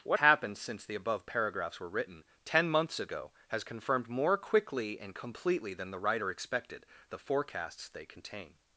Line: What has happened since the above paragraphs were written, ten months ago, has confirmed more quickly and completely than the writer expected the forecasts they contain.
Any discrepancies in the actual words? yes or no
yes